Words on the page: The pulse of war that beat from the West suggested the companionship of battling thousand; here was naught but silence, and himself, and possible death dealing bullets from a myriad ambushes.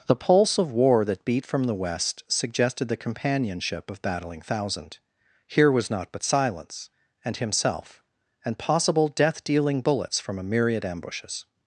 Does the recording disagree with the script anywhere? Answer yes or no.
no